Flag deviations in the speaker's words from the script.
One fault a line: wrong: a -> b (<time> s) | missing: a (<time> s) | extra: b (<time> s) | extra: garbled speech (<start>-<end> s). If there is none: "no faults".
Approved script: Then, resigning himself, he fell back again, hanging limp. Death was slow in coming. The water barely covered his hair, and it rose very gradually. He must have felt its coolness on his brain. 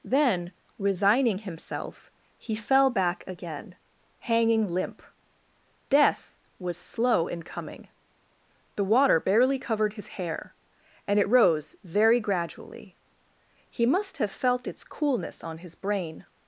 no faults